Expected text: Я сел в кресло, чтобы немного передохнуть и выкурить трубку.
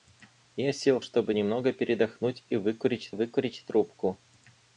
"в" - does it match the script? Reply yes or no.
no